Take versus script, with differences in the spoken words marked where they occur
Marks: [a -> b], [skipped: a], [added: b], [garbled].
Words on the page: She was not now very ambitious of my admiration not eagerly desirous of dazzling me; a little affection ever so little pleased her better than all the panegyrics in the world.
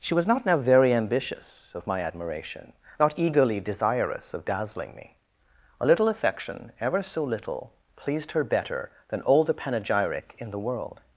She was not now very ambitious of my admiration not eagerly desirous of dazzling me; a little affection ever so little pleased her better than all the [panegyrics -> panegyric] in the world.